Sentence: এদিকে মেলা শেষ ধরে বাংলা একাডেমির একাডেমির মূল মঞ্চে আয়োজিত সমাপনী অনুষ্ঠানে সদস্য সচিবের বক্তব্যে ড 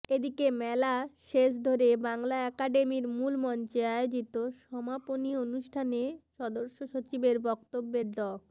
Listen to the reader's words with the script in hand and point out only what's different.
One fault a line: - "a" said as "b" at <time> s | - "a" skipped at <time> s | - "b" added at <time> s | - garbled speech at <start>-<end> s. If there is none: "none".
- "একাডেমির" skipped at 3.0 s